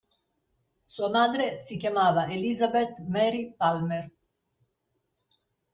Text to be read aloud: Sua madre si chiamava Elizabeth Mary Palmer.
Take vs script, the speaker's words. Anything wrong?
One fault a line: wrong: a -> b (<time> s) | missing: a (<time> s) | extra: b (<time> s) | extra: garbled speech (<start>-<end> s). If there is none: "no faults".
no faults